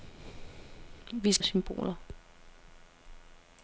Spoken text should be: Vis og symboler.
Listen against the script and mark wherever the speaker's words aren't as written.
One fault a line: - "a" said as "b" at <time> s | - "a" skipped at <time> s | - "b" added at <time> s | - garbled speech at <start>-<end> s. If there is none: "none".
none